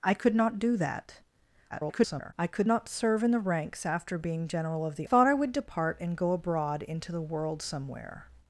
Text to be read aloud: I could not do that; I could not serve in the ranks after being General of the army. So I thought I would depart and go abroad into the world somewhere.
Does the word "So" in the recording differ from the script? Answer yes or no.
yes